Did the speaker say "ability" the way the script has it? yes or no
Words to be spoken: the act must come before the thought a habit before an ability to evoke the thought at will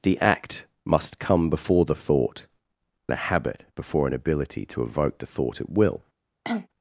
yes